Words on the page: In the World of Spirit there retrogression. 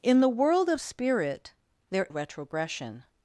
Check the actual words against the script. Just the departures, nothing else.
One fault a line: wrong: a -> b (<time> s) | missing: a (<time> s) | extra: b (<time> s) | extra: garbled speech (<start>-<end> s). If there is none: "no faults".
no faults